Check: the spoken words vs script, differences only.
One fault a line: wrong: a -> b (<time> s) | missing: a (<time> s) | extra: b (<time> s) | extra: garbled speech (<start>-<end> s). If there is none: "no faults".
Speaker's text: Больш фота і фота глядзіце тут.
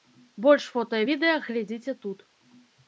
wrong: фота -> відэа (1.1 s)